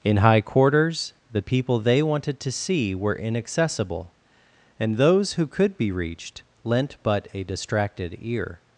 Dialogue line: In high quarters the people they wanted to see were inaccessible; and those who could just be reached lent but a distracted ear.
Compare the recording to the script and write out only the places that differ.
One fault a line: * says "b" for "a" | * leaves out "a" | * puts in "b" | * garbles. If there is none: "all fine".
* leaves out "just"